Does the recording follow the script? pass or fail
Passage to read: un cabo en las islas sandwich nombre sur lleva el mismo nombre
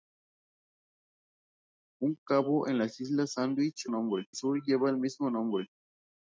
pass